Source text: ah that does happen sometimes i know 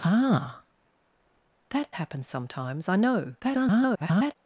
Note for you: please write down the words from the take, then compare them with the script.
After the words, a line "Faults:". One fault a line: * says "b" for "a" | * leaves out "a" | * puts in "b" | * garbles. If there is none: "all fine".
ah that happen sometimes i know [garbled]
Faults:
* leaves out "does"
* garbles